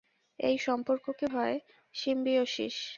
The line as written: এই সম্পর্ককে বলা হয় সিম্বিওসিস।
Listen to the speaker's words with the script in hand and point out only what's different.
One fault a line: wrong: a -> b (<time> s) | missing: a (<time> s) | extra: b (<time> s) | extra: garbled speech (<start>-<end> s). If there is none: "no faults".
missing: বলা (1.2 s)